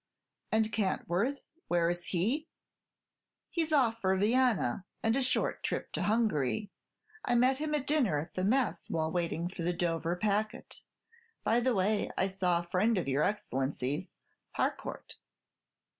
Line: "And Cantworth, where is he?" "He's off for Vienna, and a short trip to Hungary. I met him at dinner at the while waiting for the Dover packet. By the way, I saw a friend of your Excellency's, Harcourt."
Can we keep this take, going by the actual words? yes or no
no